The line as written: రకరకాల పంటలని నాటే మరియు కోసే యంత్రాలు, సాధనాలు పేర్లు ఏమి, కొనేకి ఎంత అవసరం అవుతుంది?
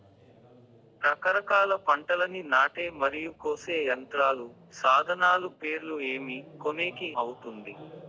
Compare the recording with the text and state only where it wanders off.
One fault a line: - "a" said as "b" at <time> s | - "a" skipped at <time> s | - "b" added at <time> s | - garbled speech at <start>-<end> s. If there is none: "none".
- "ఎంత అవసరం" skipped at 7.1 s